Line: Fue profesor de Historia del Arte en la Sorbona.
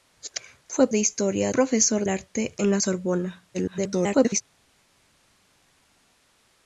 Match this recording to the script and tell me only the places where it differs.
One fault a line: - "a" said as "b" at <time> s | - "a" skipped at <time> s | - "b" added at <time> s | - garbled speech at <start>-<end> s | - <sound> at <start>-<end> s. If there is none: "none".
- "profesor" skipped at 0.9 s
- "del" said as "profesor" at 1.5 s
- garbled speech at 3.5-4.4 s